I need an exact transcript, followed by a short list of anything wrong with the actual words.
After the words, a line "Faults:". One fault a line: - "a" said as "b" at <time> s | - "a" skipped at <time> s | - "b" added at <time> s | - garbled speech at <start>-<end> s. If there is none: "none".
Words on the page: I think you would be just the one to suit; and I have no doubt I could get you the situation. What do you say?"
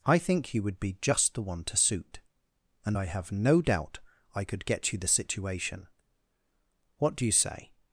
I think you would be just the one to suit; and I have no doubt I could get you the situation. What do you say?"
Faults:
none